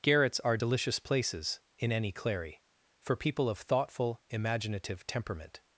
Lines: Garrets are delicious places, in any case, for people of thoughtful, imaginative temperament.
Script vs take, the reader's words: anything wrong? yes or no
yes